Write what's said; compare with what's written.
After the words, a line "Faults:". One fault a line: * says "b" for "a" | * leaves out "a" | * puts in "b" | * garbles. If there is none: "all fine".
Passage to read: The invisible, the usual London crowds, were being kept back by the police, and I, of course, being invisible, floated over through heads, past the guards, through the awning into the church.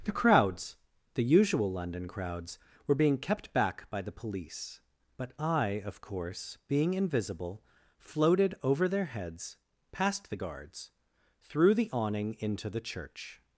The crowds, the usual London crowds, were being kept back by the police, but I, of course, being invisible, floated over their heads, past the guards, through the awning into the church.
Faults:
* says "crowds" for "invisible"
* says "but" for "and"
* says "their" for "through"